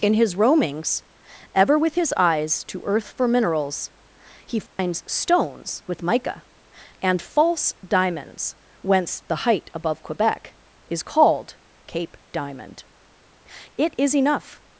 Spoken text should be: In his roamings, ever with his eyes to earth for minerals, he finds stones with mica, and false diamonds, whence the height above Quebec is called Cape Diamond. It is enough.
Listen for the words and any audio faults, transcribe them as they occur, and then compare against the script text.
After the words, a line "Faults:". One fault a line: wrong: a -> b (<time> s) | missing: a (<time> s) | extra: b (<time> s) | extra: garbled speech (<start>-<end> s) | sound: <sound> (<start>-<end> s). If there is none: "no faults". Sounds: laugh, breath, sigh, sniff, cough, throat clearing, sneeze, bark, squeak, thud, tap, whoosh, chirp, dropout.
In his roamings, ever with his eyes to earth for minerals, he finds stones with mica, and false diamonds, whence the height above Quebec is called Cape Diamond. It is enough.
Faults:
sound: dropout (4.7-4.8 s)